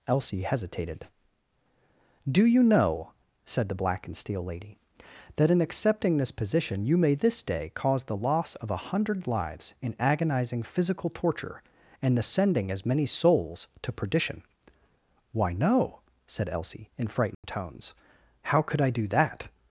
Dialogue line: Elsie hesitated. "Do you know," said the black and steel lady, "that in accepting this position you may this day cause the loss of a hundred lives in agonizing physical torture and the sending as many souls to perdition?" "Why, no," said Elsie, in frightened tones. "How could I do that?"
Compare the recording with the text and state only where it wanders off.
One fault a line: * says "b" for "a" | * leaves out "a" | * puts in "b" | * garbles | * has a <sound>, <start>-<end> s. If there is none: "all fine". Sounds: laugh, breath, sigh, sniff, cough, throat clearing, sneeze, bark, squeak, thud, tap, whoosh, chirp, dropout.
* has a dropout, 17.3-17.4 s